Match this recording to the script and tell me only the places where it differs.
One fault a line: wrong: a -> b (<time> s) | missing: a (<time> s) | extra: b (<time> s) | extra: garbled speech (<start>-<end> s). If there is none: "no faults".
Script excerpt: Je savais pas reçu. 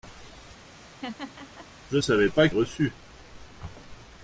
no faults